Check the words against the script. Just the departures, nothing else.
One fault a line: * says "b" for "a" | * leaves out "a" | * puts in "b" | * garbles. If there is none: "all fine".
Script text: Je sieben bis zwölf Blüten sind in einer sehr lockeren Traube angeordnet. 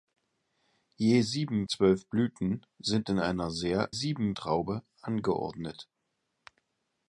* leaves out "bis"
* says "sieben" for "lockeren"